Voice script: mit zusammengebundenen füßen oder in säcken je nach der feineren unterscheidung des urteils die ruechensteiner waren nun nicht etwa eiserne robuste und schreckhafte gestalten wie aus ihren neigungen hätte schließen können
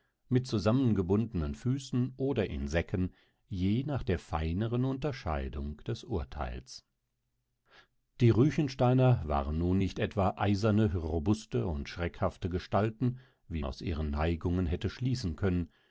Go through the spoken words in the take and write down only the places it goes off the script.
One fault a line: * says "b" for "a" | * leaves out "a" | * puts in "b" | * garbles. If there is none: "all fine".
all fine